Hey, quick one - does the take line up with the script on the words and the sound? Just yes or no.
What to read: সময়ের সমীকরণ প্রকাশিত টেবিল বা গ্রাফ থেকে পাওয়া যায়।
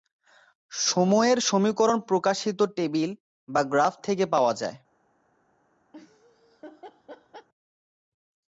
no